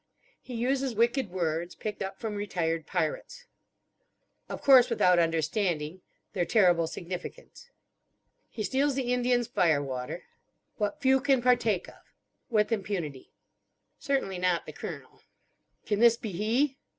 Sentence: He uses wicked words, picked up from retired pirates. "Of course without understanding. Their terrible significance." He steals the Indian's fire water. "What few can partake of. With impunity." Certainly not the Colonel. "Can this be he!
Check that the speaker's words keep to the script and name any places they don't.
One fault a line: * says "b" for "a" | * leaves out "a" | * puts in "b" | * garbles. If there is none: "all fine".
all fine